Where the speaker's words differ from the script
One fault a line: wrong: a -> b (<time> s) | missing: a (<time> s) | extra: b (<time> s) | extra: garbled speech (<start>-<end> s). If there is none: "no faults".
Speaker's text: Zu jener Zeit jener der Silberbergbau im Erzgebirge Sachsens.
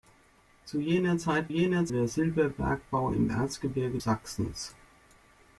no faults